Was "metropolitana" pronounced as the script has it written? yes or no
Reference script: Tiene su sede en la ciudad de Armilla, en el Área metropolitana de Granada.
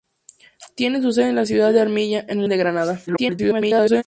no